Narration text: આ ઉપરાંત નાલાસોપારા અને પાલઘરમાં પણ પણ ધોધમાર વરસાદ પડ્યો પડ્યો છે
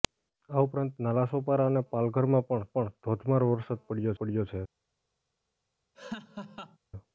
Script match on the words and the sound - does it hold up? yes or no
no